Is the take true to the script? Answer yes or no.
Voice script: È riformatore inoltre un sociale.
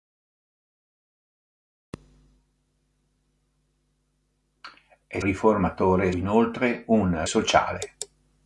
yes